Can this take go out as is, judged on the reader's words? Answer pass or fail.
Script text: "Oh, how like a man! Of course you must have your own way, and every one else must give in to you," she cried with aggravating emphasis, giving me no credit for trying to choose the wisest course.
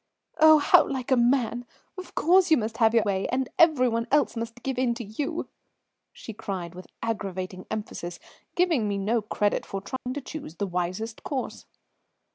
fail